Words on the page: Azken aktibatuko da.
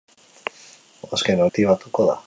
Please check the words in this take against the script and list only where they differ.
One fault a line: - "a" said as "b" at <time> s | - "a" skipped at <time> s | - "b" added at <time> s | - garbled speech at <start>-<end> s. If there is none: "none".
none